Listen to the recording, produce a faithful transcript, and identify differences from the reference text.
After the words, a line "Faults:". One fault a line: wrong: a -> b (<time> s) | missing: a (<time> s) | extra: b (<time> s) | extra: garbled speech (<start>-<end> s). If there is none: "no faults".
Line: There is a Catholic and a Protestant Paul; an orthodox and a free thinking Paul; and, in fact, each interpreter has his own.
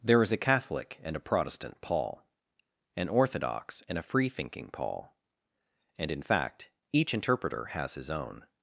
There is a Catholic and a Protestant Paul; an orthodox and a free thinking Paul; and, in fact, each interpreter has his own.
Faults:
no faults